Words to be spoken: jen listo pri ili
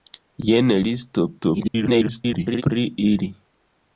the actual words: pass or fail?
fail